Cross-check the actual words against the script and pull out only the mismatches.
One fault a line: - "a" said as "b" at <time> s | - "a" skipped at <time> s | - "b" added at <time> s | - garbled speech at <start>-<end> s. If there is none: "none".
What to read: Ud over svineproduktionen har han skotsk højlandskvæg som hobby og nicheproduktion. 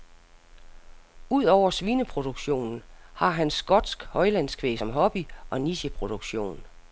none